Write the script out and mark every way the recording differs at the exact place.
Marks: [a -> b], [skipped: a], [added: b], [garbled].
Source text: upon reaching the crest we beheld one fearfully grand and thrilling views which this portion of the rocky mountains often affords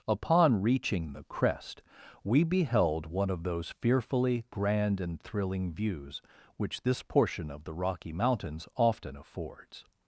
upon reaching the crest we beheld one [added: of those] fearfully grand and thrilling views which this portion of the rocky mountains often affords